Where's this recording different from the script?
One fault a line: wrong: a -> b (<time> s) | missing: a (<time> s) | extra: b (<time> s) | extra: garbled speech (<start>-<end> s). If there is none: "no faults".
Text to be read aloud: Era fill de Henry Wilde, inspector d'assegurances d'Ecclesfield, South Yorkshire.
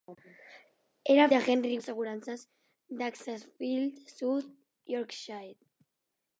missing: fill (1.3 s)
missing: Wilde inspector (1.8 s)